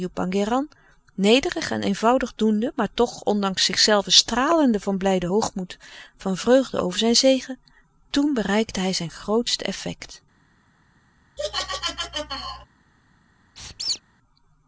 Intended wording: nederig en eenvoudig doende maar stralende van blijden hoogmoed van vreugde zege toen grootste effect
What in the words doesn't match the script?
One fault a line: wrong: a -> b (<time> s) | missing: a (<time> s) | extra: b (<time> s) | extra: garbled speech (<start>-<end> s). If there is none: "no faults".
extra: toch ondanks zichzelven (2.9 s)
extra: over zijn (6.8 s)
extra: bereikte hij zijn (8.3 s)